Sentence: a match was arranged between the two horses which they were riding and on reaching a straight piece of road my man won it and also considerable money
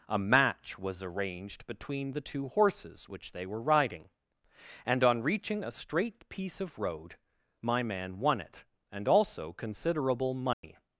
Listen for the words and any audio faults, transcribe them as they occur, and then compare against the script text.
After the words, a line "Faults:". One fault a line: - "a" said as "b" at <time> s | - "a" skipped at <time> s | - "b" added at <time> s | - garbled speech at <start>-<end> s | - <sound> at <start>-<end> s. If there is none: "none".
a match was arranged between the two horses which they were riding and on reaching a straight piece of road my man won it and also considerable money
Faults:
- dropout at 10.5-10.6 s